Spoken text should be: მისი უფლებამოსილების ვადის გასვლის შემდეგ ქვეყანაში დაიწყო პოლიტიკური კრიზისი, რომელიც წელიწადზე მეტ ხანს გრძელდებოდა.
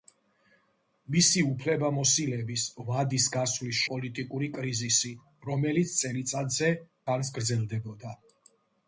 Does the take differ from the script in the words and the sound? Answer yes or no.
yes